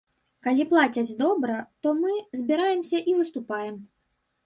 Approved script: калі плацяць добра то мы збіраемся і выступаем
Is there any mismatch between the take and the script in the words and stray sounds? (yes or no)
no